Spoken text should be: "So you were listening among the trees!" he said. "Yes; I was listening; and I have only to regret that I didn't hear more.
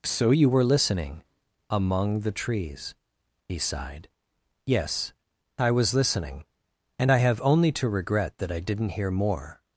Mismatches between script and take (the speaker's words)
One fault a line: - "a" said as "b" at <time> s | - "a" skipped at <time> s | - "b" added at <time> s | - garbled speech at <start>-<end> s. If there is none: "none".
- "said" said as "sighed" at 3.6 s